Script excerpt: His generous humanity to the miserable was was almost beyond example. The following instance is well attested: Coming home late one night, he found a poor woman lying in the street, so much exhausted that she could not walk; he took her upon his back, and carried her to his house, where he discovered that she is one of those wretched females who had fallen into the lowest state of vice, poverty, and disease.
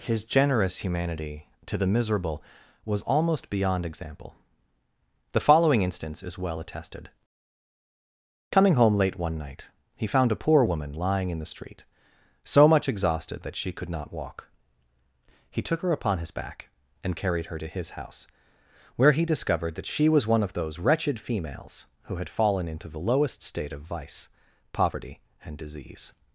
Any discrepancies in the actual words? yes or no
yes